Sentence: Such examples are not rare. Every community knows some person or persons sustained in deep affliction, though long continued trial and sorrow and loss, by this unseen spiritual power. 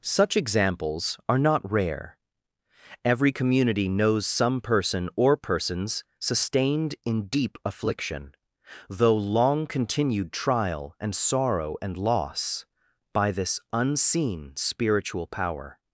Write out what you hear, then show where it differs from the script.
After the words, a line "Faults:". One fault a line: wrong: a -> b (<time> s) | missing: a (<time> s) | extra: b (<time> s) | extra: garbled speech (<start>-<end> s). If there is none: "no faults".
Such examples are not rare. Every community knows some person or persons sustained in deep affliction, though long continued trial and sorrow and loss, by this unseen spiritual power.
Faults:
no faults